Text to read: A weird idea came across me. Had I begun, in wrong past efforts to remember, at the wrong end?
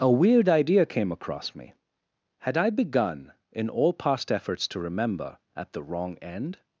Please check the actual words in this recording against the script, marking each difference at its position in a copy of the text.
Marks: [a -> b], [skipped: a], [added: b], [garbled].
A weird idea came across me. Had I begun, in [wrong -> all] past efforts to remember, at the wrong end?